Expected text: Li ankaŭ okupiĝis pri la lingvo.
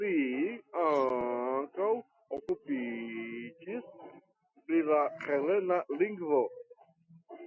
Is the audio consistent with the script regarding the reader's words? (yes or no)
no